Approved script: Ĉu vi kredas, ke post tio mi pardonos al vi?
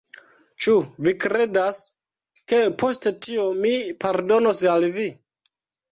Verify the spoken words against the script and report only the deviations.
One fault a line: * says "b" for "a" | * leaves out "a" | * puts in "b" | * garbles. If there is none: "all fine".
all fine